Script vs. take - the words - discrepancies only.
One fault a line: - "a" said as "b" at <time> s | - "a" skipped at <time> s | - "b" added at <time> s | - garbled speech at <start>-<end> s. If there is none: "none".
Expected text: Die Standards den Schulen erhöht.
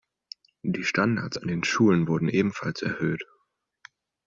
- "an" added at 1.3 s
- "wurden ebenfalls" added at 2.1 s